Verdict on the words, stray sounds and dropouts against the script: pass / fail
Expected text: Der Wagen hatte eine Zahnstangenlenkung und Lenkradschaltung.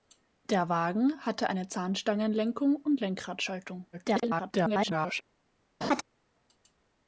fail